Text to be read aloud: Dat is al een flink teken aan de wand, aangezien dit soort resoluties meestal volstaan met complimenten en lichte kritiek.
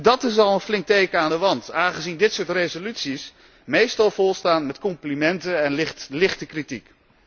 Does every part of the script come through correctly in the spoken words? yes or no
yes